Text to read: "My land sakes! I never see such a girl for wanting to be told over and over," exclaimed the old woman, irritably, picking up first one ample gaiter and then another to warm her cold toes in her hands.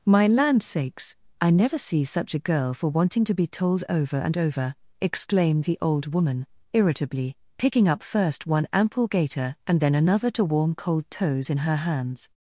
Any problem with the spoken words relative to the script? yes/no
yes